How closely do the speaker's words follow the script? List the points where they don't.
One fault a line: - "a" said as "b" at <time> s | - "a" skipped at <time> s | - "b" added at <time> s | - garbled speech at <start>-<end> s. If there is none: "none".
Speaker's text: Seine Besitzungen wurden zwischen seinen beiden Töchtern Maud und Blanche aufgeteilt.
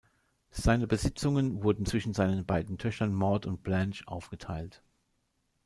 none